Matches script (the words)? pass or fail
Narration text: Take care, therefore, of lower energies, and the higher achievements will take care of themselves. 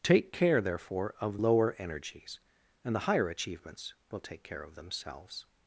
pass